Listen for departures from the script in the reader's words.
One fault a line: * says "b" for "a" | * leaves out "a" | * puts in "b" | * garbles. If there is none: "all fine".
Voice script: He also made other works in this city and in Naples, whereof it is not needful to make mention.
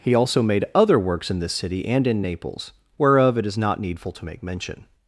all fine